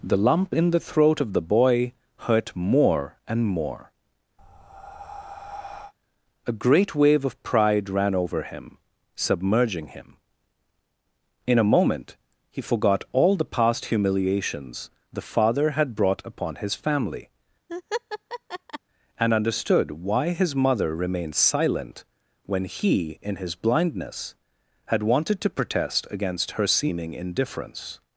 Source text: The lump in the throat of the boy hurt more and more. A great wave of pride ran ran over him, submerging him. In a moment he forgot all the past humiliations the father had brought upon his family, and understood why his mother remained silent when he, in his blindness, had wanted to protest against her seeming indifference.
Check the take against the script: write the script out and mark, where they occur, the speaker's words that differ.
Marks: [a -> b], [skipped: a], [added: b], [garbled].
The lump in the throat of the boy hurt more and more. A great wave of pride ran [skipped: ran] over him, submerging him. In a moment he forgot all the past humiliations the father had brought upon his family, and understood why his mother remained silent when he, in his blindness, had wanted to protest against her seeming indifference.